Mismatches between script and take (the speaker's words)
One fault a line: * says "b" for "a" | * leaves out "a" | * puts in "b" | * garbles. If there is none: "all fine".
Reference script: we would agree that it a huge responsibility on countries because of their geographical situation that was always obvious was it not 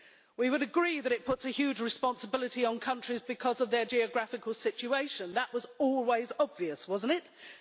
* puts in "puts"